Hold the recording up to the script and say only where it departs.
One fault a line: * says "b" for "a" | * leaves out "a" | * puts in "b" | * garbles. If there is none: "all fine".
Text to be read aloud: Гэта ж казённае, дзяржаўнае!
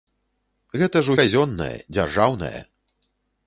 all fine